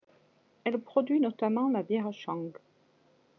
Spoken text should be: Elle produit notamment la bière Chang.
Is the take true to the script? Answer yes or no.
yes